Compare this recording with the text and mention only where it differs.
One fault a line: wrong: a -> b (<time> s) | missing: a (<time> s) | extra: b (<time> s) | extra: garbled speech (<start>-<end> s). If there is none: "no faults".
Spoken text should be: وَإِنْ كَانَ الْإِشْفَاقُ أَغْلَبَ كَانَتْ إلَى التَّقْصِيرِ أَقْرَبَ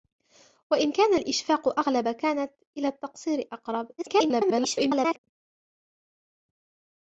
extra: garbled speech (4.0-5.2 s)